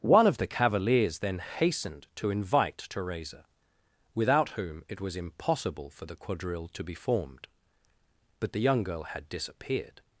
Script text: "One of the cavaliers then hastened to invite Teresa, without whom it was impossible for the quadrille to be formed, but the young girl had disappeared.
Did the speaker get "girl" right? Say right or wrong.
right